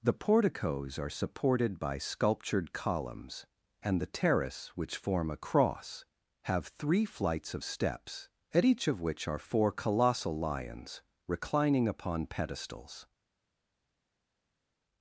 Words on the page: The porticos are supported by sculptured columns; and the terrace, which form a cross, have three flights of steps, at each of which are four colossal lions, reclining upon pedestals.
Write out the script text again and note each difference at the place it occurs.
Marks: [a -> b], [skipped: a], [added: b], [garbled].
The porticos are supported by sculptured columns; and the terrace, which form a cross, have three flights of steps, at each of which are four colossal lions, reclining upon pedestals.